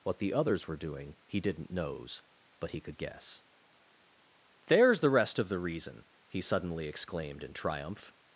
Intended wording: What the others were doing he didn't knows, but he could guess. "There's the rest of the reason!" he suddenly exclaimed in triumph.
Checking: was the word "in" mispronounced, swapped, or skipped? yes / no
no